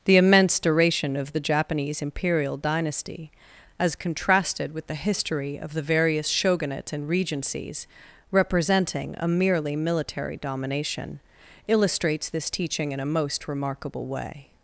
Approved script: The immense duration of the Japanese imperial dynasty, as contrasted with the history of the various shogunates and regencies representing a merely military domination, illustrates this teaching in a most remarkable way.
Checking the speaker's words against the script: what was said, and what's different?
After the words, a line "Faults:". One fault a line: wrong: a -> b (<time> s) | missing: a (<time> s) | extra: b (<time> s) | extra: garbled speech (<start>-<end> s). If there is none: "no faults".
The immense duration of the Japanese imperial dynasty, as contrasted with the history of the various shogunates and regencies representing a merely military domination, illustrates this teaching in a most remarkable way.
Faults:
no faults